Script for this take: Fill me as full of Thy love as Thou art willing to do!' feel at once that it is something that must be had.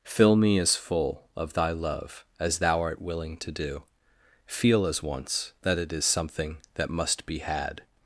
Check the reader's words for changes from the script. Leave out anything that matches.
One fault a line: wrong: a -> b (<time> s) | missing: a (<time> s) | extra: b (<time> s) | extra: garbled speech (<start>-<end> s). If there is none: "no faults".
wrong: at -> as (4.8 s)